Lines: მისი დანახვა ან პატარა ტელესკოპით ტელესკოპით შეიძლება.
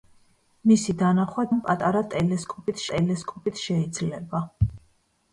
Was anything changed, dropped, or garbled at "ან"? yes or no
no